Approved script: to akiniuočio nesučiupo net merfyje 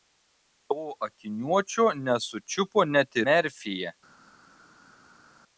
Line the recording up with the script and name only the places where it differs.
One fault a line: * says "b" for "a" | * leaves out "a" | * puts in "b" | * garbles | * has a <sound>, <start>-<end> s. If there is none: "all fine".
all fine